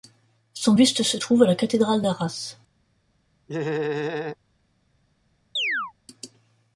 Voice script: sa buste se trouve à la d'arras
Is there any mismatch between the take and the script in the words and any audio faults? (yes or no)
yes